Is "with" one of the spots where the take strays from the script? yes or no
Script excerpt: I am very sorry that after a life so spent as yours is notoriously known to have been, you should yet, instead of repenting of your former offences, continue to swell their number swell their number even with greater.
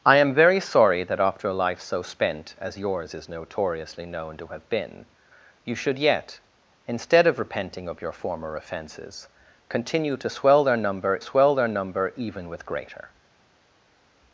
no